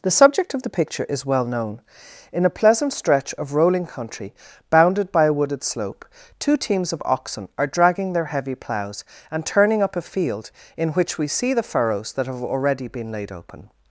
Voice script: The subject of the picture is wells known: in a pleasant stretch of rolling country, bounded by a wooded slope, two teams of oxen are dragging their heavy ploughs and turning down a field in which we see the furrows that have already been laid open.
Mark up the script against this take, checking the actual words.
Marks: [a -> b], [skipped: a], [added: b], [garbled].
The subject of the picture is [wells -> well] known: in a pleasant stretch of rolling country, bounded by a wooded slope, two teams of oxen are dragging their heavy ploughs and turning [down -> up] a field in which we see the furrows that have already been laid open.